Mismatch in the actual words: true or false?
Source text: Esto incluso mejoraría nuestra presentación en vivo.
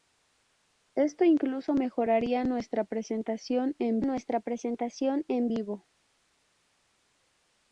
true